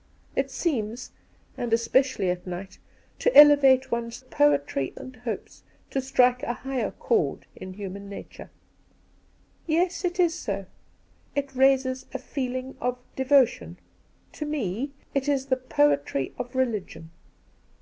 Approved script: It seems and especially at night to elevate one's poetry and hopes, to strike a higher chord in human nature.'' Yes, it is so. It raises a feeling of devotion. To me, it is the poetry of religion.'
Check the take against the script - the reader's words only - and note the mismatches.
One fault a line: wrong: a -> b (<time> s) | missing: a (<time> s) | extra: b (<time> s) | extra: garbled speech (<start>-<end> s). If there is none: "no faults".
no faults